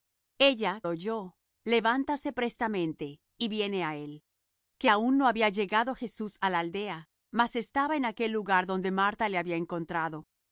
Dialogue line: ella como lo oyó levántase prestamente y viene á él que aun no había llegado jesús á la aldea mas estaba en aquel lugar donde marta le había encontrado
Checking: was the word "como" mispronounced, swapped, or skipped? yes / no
yes